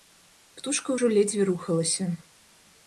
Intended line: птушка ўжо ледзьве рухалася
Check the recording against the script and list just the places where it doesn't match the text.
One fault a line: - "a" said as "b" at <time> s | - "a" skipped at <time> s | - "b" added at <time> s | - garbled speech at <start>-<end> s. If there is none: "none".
none